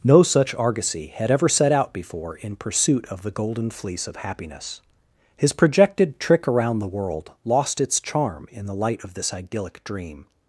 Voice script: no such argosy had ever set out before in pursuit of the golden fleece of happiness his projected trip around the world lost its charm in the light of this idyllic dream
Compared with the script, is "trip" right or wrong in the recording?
wrong